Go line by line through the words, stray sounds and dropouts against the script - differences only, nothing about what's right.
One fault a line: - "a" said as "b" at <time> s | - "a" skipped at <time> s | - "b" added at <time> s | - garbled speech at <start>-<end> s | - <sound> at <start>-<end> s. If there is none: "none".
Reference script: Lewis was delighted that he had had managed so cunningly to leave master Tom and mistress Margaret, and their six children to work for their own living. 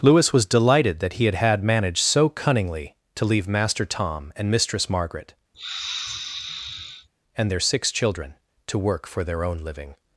- sniff at 5.5-7.1 s